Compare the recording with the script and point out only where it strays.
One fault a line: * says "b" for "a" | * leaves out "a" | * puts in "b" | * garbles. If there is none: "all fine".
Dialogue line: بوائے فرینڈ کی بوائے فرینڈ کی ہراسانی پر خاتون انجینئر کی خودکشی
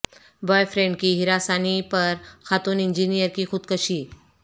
* leaves out "بوائے فرینڈ کی"